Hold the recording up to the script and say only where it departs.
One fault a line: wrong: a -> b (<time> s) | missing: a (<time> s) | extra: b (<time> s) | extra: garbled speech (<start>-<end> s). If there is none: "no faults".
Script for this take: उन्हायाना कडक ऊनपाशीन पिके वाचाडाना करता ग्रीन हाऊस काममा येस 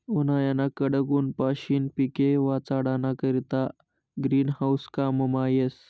no faults